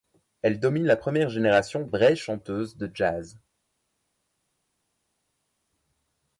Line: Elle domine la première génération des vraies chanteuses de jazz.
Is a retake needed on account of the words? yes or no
yes